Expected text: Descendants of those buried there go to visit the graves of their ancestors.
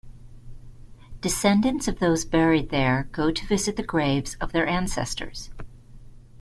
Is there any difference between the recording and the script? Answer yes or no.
no